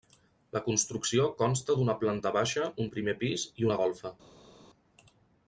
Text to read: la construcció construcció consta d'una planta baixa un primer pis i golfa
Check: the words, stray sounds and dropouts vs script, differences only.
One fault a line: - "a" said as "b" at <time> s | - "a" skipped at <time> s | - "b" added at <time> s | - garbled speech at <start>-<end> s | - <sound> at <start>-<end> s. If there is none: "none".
- "construcció" skipped at 1.3 s
- "una" added at 3.7 s